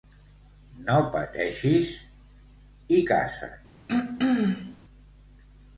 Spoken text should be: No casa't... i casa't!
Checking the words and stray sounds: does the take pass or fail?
fail